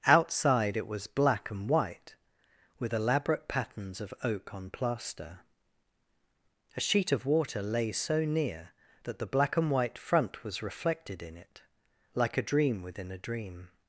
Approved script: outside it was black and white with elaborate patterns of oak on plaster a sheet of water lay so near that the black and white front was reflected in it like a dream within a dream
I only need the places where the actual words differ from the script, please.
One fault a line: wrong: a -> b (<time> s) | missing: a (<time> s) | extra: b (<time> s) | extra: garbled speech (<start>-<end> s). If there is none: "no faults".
no faults